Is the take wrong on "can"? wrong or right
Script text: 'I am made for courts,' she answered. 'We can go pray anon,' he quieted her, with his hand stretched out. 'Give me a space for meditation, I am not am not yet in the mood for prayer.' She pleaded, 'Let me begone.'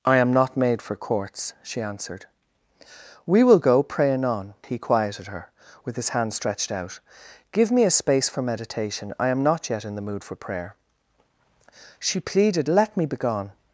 wrong